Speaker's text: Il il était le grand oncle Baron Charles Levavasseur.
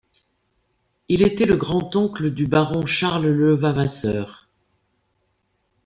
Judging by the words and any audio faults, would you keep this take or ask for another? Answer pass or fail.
fail